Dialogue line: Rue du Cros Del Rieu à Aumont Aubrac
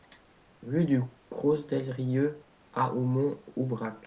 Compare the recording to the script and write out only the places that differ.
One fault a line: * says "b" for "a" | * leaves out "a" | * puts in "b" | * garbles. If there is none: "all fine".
all fine